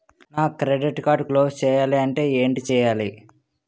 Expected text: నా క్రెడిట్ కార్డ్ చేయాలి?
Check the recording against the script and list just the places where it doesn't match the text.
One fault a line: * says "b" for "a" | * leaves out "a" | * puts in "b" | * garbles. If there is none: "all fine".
* puts in "క్లోజ్ చేయాలంటే ఏంటి"